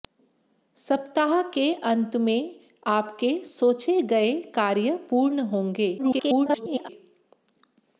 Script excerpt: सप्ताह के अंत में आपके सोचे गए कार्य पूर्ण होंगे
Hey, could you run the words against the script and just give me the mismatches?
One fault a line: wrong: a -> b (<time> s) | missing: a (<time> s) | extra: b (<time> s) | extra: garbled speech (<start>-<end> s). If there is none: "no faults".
extra: garbled speech (6.0-6.9 s)